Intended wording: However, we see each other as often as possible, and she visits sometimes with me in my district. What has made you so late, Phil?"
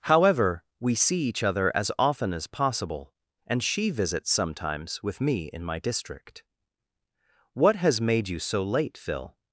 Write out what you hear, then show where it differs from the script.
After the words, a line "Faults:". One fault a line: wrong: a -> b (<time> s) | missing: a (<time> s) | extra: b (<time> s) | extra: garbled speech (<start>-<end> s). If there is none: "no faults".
However, we see each other as often as possible, and she visits sometimes with me in my district. What has made you so late, Phil?"
Faults:
no faults